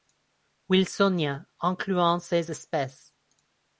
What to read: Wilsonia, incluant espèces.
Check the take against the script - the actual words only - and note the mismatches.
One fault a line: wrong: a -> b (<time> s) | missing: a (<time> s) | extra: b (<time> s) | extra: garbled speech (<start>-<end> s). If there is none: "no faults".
extra: ces (2.2 s)